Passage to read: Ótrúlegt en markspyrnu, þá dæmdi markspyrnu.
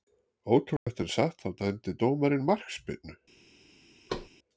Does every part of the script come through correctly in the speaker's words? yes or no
no